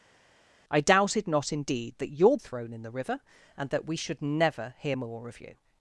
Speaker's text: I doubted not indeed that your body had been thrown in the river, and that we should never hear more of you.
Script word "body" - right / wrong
wrong